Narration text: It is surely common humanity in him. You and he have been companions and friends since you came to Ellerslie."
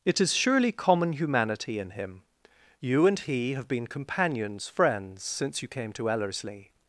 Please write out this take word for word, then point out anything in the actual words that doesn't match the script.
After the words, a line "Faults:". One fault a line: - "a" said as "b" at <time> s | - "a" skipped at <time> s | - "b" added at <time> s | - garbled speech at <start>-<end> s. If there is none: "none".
It is surely common humanity in him. You and he have been companions friends since you came to Ellerslie."
Faults:
- "and" skipped at 4.7 s